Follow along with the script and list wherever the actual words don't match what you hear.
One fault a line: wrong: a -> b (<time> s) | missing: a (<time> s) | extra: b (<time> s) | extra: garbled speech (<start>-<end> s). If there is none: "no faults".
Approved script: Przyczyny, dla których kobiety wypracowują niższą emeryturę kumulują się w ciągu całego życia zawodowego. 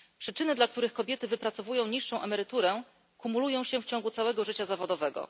no faults